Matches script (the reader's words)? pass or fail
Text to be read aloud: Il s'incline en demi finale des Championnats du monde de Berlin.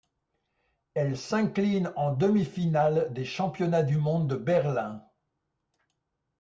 fail